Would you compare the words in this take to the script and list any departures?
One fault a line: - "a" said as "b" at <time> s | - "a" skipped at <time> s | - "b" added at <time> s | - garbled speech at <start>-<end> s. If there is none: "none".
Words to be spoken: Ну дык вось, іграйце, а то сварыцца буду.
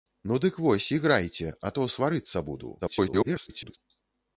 - garbled speech at 2.8-3.8 s